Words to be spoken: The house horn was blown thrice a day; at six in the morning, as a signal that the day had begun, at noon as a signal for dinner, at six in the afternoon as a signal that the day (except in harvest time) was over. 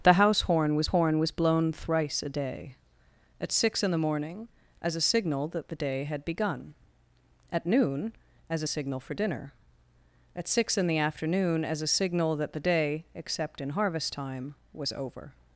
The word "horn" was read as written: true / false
true